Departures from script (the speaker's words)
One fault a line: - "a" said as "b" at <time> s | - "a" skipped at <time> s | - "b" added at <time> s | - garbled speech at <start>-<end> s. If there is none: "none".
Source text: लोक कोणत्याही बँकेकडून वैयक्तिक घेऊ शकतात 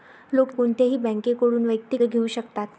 none